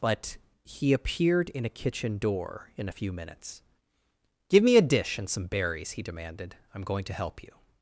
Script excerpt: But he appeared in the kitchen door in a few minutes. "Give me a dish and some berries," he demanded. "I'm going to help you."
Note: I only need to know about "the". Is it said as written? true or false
false